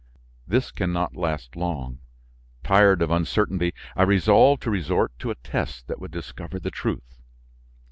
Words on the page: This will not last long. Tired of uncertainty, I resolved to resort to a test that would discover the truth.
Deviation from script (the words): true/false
true